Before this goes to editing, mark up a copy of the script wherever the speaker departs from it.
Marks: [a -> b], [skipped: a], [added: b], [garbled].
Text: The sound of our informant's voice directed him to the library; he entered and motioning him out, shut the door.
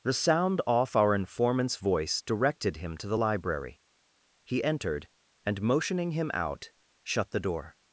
The sound [of -> off] our informant's voice directed him to the library; he entered and motioning him out, shut the door.